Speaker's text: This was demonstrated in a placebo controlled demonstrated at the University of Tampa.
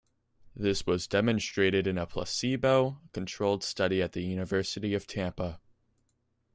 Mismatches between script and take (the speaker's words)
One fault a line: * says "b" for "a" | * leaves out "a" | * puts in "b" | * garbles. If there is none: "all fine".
* says "study" for "demonstrated"